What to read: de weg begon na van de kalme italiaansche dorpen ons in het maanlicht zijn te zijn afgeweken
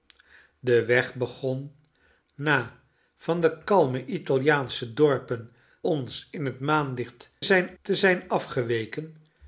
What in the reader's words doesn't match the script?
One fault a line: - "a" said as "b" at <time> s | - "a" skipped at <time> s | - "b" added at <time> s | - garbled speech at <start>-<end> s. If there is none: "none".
none